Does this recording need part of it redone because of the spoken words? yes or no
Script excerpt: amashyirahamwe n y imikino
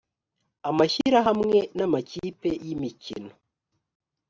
yes